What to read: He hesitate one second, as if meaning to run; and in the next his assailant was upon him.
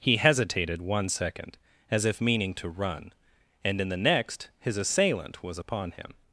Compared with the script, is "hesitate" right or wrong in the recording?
wrong